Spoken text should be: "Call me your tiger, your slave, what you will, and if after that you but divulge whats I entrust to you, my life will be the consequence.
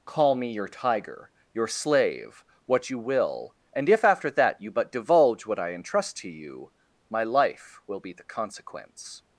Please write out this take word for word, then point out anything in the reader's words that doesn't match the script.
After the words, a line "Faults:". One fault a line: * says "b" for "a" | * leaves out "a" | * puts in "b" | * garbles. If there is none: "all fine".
"Call me your tiger, your slave, what you will, and if after that you but divulge what I entrust to you, my life will be the consequence.
Faults:
* says "what" for "whats"